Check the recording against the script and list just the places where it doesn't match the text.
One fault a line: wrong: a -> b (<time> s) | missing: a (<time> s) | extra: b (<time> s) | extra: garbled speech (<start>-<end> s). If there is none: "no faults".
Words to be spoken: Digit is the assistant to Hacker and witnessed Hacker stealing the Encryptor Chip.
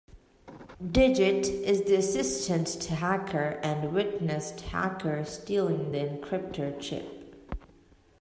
no faults